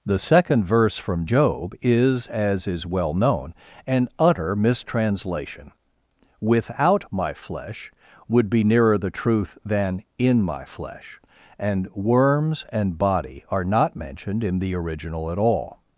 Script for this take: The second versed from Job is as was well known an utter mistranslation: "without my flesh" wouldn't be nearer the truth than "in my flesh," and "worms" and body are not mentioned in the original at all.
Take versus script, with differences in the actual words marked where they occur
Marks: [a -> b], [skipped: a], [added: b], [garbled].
The second [versed -> verse] from Job is as [was -> is] well known an utter mistranslation: "without my flesh" [wouldn't -> would] be nearer the truth than "in my flesh," and "worms" and body are not mentioned in the original at all.